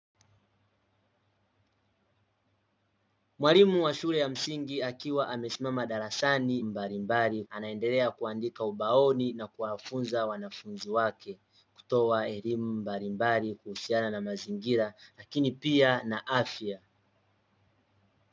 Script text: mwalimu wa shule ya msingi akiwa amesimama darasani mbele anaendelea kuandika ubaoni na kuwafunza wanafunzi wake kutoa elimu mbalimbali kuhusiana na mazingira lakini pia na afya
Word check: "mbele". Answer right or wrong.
wrong